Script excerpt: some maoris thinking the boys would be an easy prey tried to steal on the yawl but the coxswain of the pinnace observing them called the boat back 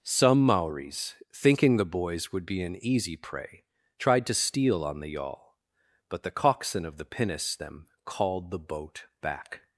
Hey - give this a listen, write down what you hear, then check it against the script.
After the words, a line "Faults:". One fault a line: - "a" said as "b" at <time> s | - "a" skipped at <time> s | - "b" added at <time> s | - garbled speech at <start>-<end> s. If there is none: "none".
some maoris thinking the boys would be an easy prey tried to steal on the yawl but the coxswain of the pinnace them called the boat back
Faults:
- "observing" skipped at 7.6 s